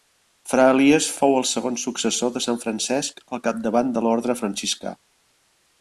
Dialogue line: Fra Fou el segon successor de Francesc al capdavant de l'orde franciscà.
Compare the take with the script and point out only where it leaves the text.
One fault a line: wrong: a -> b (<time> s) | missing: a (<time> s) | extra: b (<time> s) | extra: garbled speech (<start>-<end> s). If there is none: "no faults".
extra: Elies (0.8 s)
extra: sant (2.5 s)